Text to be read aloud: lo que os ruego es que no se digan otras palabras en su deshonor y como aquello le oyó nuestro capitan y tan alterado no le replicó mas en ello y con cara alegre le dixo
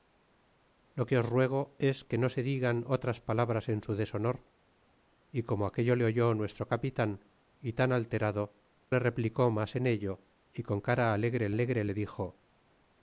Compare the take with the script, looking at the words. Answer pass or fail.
fail